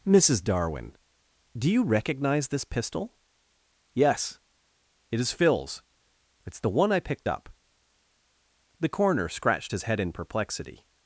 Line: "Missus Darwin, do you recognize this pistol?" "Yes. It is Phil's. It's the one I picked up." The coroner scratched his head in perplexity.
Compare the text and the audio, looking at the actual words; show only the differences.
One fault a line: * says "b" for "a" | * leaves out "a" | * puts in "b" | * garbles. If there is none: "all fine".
all fine